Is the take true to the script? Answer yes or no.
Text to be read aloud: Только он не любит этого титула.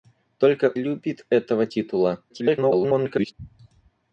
no